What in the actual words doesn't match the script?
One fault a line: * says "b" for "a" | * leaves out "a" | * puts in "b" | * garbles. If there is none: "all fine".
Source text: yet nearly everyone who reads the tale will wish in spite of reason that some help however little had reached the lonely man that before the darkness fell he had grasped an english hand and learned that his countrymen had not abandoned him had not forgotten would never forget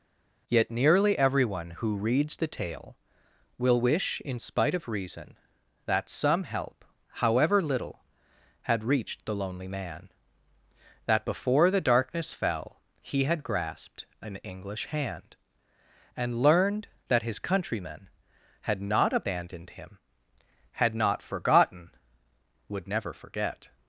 all fine